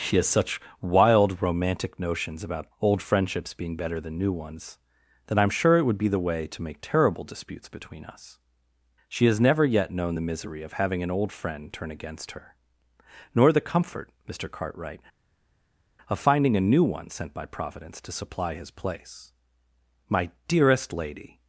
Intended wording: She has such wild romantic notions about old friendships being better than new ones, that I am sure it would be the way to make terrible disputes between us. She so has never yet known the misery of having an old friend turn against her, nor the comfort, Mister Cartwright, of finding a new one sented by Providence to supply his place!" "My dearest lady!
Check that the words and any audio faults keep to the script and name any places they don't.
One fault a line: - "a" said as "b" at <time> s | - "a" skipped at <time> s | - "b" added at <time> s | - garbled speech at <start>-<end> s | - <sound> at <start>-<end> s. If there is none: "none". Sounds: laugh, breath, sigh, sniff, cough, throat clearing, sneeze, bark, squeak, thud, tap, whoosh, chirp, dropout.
- "so" skipped at 9.3 s
- "sented" said as "sent" at 17.1 s